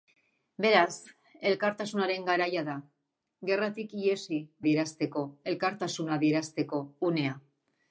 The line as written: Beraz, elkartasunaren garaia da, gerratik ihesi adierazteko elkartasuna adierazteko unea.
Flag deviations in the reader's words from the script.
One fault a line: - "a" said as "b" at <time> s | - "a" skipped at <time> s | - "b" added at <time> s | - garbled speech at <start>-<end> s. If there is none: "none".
none